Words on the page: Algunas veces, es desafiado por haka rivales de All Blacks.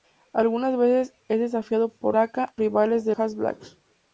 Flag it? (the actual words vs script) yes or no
no